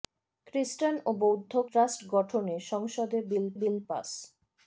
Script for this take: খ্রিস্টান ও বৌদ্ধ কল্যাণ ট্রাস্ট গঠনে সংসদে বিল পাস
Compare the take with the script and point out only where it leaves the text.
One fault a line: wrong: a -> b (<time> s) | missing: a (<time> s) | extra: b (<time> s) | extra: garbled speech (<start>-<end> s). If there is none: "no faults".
missing: কল্যাণ (1.5 s)
extra: বিল (3.6 s)